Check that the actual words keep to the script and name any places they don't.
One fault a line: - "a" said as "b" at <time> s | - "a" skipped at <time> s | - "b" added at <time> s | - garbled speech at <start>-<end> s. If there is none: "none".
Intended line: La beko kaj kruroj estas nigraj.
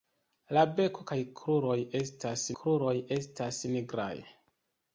- "kruroj estas" added at 2.6 s